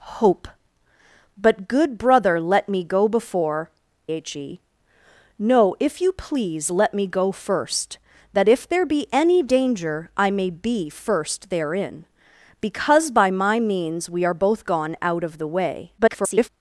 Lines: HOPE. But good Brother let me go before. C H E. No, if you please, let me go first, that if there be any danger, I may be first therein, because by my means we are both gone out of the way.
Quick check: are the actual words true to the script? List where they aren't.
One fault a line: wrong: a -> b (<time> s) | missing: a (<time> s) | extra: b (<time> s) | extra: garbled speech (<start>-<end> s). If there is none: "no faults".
missing: C (3.7 s)
extra: garbled speech (16.0-16.5 s)